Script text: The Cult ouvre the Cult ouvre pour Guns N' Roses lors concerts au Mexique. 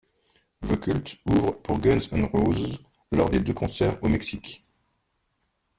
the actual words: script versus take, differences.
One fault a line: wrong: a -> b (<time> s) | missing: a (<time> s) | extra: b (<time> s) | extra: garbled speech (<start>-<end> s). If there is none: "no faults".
missing: the Cult ouvre (1.6 s)
extra: des deux (3.3 s)